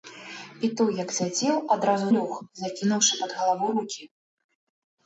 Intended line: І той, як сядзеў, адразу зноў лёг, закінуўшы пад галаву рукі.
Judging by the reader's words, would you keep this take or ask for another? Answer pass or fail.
fail